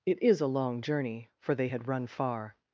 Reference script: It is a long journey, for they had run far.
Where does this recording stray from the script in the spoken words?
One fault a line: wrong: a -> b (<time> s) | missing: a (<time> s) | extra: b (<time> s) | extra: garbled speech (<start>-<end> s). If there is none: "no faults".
no faults